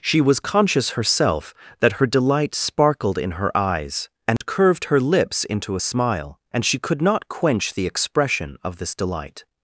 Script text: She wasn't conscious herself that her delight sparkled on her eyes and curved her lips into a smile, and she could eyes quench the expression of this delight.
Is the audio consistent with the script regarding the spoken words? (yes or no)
no